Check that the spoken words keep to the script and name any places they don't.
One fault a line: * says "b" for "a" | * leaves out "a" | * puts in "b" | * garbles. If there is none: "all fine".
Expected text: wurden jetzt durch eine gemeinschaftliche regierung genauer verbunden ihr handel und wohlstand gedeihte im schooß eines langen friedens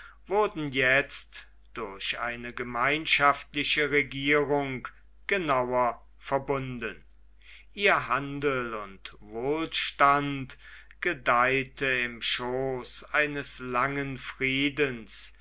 all fine